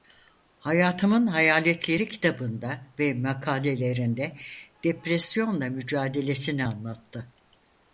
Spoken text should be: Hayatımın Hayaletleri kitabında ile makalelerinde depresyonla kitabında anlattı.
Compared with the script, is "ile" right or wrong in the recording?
wrong